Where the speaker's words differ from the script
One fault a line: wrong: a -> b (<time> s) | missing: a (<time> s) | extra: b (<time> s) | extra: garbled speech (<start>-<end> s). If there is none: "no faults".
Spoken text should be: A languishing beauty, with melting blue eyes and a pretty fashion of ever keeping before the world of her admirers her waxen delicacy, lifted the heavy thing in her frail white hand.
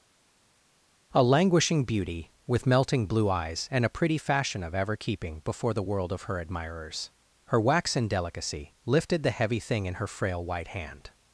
no faults